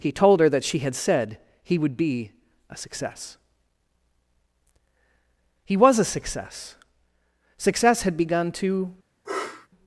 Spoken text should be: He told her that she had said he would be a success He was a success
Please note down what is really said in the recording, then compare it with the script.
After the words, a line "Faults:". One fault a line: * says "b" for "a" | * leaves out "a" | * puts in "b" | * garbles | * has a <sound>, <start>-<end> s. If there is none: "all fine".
He told her that she had said he would be a success He was a success Success had begun to
Faults:
* puts in "Success had begun to"
* has a sniff, 9.2-9.7 s